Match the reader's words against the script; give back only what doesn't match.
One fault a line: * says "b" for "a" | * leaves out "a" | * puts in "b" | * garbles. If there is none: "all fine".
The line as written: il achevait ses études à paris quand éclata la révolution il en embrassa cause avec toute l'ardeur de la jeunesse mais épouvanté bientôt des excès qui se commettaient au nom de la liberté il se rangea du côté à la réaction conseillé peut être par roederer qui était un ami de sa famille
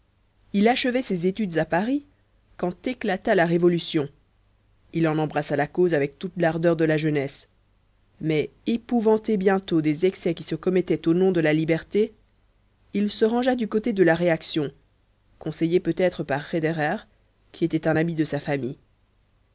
* puts in "la"
* says "de" for "à"